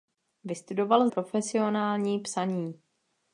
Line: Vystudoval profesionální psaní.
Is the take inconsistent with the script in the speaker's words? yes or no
no